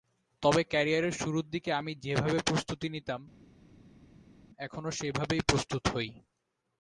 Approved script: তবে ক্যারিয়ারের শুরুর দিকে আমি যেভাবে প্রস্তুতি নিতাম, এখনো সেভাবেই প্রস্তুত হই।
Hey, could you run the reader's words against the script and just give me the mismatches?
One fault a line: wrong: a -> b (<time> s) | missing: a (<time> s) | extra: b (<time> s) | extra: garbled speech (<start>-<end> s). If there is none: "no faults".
no faults